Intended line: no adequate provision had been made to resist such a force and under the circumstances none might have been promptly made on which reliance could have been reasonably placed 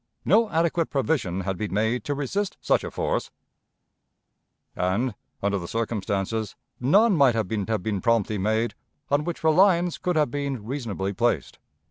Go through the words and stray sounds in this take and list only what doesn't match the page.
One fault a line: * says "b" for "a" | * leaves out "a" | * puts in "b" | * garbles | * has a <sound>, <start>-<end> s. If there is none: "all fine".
* puts in "have been"